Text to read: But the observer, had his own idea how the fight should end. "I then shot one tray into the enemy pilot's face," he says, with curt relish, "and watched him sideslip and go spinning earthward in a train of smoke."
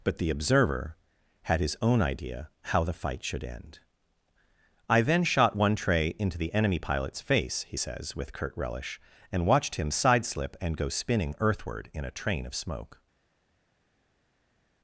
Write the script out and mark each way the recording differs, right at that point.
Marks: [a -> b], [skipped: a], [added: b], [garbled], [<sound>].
But the observer, had his own idea how the fight should end. "I then shot one tray into the enemy pilot's face," he says, with curt relish, "and watched him sideslip and go spinning earthward in a train of smoke."